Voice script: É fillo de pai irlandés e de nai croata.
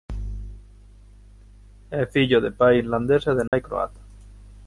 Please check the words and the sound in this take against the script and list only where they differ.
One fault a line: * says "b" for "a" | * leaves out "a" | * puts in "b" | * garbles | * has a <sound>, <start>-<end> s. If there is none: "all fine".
* has a dropout, 3.5-3.5 s